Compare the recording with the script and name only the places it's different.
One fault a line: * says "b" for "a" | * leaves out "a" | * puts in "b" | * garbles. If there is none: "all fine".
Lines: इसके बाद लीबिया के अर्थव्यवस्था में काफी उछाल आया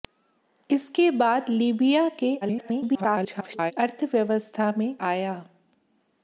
* garbles
* leaves out "काफी उछाल"